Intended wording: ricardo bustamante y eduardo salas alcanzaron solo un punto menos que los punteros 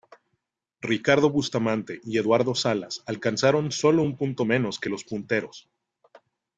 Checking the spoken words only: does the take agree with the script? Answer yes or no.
yes